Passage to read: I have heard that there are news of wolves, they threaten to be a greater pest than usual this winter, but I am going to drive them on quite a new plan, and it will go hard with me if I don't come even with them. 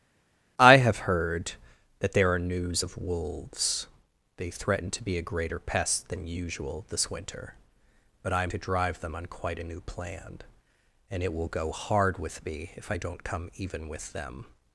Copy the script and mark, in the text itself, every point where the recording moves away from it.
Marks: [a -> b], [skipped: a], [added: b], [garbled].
I have heard that there are news of wolves, they threaten to be a greater pest than usual this winter, but I am [skipped: going] to drive them on quite a new plan, and it will go hard with me if I don't come even with them.